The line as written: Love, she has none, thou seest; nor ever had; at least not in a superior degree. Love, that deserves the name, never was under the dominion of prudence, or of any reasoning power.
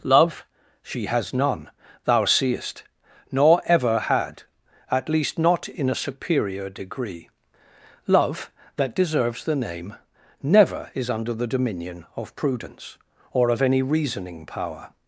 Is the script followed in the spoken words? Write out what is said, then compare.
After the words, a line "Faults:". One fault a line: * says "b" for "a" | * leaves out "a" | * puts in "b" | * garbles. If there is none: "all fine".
Love, she has none, thou seest; nor ever had; at least not in a superior degree. Love, that deserves the name, never is under the dominion of prudence, or of any reasoning power.
Faults:
* says "is" for "was"